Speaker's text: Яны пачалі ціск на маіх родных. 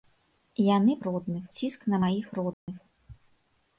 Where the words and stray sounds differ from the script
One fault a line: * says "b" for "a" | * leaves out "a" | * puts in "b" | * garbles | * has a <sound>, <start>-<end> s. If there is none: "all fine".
* says "родных" for "пачалі"
* has a dropout, 2.5-2.7 s